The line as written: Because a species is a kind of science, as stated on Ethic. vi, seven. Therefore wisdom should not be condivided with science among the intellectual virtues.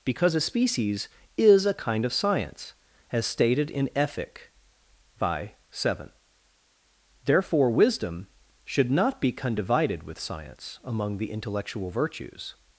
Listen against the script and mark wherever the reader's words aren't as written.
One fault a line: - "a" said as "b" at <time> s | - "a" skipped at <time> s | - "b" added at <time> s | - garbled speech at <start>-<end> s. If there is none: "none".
- "on" said as "in" at 3.7 s